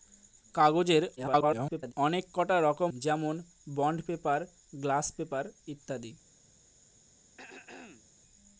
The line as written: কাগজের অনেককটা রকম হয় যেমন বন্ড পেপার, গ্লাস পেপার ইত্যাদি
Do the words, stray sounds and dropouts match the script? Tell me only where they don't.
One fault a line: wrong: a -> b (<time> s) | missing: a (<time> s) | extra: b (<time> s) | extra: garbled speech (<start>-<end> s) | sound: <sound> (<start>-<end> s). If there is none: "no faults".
extra: garbled speech (1.2-1.9 s)
missing: হয় (2.9 s)
sound: throat clearing (7.4-8.1 s)